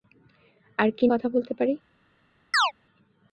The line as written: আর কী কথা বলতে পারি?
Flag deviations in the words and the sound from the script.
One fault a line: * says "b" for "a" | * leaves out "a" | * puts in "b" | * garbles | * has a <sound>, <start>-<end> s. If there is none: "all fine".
* has a chirp, 2.5-2.7 s